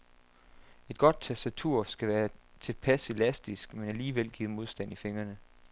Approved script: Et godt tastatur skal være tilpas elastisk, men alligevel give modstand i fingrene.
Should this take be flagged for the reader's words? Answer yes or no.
no